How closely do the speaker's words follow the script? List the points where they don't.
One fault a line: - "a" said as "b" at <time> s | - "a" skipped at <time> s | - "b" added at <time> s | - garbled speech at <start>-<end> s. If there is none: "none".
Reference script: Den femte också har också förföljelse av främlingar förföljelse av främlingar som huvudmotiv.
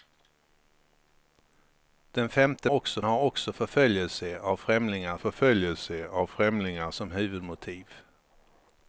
none